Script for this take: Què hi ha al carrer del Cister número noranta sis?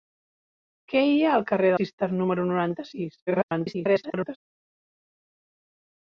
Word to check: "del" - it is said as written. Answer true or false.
false